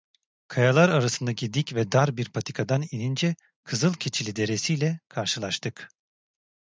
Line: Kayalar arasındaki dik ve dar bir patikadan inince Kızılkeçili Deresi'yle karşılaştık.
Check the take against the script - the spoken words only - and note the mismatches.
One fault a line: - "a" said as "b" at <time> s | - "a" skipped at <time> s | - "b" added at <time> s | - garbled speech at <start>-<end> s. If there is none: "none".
none